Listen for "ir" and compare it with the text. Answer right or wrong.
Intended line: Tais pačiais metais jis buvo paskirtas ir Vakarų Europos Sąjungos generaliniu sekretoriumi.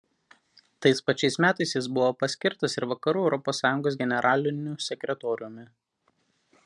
right